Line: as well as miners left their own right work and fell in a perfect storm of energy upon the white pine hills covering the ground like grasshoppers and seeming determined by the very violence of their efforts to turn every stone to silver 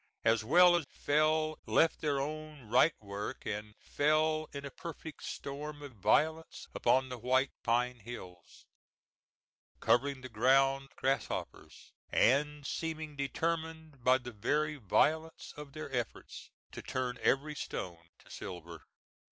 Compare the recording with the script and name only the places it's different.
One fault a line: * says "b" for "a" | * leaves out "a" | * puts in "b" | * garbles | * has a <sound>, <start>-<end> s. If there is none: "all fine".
* says "fell" for "miners"
* says "violence" for "energy"
* leaves out "like"